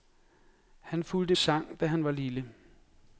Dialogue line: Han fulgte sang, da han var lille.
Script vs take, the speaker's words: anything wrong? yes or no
no